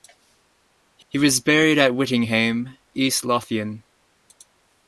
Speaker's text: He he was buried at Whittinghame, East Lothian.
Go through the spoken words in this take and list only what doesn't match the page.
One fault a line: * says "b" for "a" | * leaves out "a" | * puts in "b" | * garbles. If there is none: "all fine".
all fine